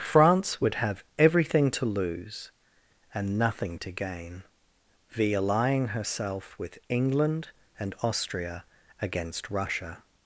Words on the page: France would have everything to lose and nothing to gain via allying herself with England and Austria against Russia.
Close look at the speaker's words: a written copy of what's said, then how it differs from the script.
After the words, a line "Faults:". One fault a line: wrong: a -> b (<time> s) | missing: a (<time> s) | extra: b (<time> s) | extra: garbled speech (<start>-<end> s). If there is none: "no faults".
France would have everything to lose and nothing to gain via allying herself with England and Austria against Russia.
Faults:
no faults